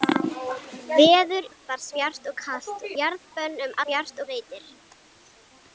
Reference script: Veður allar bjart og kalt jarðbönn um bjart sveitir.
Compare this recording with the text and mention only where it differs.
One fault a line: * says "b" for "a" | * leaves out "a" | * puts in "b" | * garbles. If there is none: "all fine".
all fine